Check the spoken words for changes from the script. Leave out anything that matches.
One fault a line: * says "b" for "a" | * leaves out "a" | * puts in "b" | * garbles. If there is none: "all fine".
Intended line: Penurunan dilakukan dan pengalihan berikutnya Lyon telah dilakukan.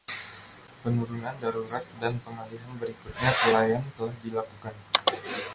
* says "darurat" for "dilakukan"
* puts in "ke"